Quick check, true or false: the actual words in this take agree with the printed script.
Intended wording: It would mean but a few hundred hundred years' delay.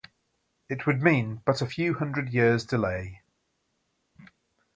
false